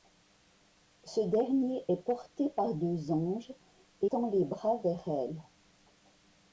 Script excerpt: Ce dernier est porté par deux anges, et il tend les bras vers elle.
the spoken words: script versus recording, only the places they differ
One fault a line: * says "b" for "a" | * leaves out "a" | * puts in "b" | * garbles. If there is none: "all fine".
* leaves out "il"